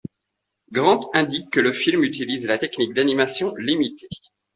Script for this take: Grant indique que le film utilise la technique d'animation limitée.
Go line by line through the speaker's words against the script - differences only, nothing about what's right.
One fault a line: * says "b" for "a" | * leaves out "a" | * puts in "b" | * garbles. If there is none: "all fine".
all fine